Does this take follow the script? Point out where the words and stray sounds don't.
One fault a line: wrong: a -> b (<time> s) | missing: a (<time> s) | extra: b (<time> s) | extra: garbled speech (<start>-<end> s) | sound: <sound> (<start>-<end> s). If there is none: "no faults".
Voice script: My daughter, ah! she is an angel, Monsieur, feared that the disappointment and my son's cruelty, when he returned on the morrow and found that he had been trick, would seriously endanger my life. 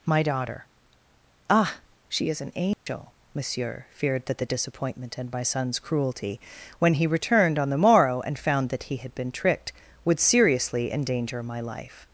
sound: dropout (2.7-2.9 s)
wrong: trick -> tricked (9.3 s)